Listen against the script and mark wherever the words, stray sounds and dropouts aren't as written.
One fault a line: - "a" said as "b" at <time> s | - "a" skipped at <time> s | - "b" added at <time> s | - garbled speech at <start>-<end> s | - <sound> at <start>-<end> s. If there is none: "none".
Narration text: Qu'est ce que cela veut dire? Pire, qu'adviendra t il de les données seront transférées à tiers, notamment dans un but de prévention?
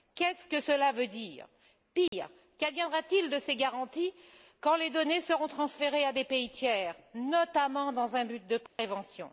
- dropout at 2.1-2.1 s
- "ces garanties quand" added at 3.4 s
- "des pays" added at 6.1 s
- dropout at 8.7-8.8 s